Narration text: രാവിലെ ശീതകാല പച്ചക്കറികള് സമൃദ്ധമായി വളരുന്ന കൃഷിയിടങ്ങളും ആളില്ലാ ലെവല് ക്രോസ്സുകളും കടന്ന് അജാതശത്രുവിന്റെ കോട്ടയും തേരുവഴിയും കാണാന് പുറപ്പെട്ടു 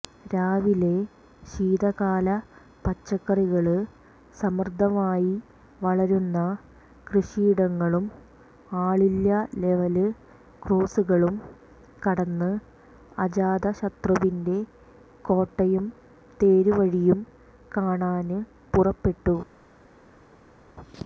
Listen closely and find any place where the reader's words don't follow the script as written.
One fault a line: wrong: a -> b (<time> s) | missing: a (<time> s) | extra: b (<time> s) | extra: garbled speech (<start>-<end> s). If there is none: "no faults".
no faults